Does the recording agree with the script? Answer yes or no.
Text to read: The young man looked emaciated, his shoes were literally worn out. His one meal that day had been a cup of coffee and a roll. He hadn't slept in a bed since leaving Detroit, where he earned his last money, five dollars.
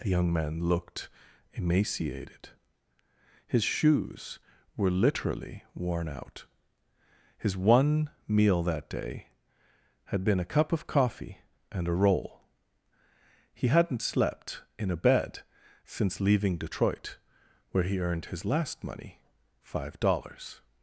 yes